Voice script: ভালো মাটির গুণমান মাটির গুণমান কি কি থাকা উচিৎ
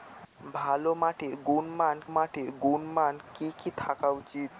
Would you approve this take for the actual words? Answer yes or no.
yes